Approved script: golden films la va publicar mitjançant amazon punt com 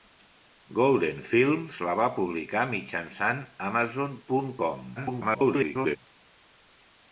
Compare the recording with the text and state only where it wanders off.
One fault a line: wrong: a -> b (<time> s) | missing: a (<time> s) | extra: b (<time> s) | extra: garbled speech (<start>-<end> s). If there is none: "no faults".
extra: garbled speech (5.0-6.0 s)